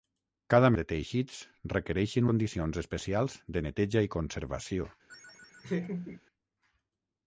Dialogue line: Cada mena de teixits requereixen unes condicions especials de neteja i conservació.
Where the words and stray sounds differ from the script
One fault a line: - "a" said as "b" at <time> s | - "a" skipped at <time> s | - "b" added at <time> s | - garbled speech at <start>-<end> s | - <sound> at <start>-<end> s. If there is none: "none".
- "mena" skipped at 0.7 s
- "unes" skipped at 2.3 s
- laugh at 5.1-6.2 s